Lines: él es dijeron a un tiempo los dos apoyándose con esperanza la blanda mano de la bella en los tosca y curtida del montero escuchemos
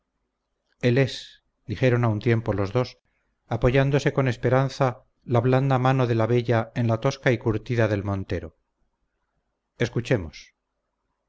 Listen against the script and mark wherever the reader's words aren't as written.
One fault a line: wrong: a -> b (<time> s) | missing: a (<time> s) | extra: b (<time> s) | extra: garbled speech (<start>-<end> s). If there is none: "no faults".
wrong: los -> la (6.9 s)